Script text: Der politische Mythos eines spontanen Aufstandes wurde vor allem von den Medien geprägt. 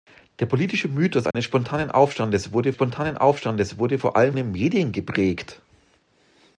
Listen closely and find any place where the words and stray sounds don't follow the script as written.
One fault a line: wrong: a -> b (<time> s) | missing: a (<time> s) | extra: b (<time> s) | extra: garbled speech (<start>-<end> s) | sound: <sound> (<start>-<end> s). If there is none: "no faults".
sound: dropout (1.3-1.3 s)
extra: spontanen Aufstandes wurde (2.7 s)
missing: von (4.3 s)